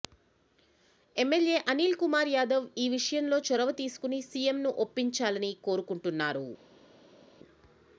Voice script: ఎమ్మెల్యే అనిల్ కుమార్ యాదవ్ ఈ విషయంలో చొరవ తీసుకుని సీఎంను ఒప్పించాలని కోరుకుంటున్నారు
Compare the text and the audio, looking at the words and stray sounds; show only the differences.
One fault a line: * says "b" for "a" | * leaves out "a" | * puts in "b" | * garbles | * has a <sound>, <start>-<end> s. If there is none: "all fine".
all fine